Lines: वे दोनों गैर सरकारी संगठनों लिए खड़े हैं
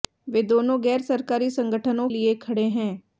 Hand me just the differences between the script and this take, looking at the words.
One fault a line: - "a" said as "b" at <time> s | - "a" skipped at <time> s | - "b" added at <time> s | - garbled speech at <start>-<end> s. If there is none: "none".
none